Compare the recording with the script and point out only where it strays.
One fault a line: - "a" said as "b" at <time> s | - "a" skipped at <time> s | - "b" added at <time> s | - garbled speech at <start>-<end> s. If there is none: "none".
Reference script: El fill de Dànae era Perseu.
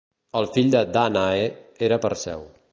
none